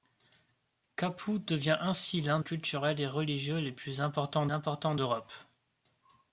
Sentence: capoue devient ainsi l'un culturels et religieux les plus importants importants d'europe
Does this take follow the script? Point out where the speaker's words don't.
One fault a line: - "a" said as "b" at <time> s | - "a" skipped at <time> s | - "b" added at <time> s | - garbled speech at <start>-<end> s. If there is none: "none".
none